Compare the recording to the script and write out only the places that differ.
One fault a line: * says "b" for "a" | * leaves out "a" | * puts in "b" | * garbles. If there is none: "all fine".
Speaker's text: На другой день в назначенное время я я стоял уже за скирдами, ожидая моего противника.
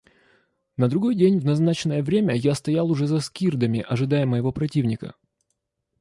* leaves out "я"